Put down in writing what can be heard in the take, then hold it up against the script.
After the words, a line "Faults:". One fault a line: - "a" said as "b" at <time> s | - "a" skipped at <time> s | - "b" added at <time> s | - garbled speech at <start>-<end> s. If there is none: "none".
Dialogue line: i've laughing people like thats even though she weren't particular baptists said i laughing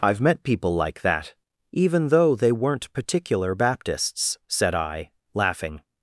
i've met people like that even though they weren't particular baptists said i laughing
Faults:
- "laughing" said as "met" at 0.2 s
- "thats" said as "that" at 1.0 s
- "she" said as "they" at 2.4 s